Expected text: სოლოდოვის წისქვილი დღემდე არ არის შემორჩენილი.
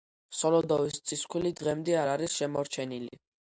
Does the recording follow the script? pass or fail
pass